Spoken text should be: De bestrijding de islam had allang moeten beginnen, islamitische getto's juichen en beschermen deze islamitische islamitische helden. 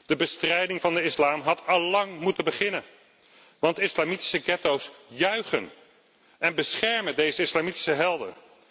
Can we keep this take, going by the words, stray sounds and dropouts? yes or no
no